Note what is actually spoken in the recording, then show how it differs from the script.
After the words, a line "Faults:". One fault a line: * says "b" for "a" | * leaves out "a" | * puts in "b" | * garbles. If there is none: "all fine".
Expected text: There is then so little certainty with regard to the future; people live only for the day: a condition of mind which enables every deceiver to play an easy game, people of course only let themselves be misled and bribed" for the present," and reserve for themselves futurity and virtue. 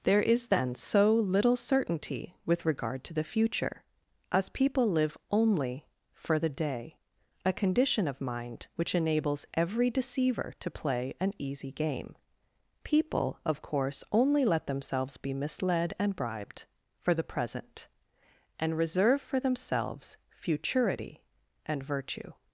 There is then so little certainty with regard to the future; as people live only for the day: a condition of mind which enables every deceiver to play an easy game, people of course only let themselves be misled and bribed" for the present," and reserve for themselves futurity and virtue.
Faults:
* puts in "as"